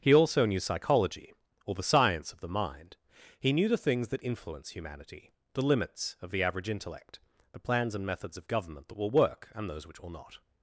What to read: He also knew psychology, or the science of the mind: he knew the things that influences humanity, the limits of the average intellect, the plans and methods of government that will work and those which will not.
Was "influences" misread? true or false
true